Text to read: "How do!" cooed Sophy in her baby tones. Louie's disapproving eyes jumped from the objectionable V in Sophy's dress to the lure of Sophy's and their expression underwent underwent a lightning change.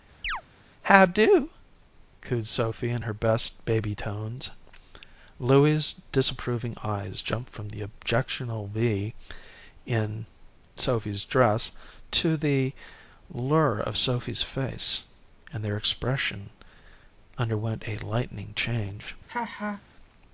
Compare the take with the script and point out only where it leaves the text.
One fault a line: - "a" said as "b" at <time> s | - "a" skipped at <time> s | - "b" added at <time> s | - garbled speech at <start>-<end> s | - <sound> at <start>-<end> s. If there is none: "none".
- chirp at 0.2-0.4 s
- "best" added at 3.1 s
- "face" added at 14.4 s
- "underwent" skipped at 17.8 s
- laugh at 19.3-19.8 s